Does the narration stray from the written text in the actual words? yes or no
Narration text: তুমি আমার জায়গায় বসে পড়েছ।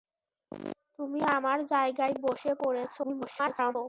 yes